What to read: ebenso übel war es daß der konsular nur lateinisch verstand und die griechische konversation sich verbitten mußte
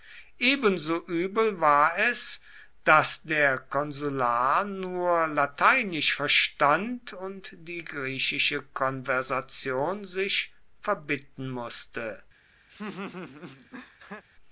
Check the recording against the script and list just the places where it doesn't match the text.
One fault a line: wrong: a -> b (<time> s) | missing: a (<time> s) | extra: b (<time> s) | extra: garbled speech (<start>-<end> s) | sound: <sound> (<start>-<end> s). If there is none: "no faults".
sound: laugh (12.7-14.2 s)